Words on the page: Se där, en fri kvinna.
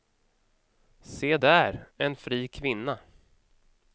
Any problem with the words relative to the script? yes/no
no